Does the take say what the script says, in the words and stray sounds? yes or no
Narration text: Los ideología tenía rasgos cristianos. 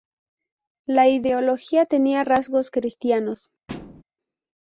no